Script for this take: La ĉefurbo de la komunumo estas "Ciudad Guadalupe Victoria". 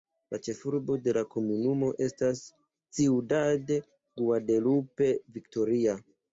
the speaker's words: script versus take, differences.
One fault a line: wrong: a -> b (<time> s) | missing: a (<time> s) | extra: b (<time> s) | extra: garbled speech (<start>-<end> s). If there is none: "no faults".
no faults